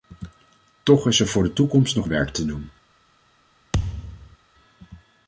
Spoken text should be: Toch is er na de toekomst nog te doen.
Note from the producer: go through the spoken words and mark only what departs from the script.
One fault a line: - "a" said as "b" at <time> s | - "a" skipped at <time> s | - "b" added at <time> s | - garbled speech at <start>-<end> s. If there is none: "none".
- "na" said as "voor" at 1.3 s
- "werk" added at 2.0 s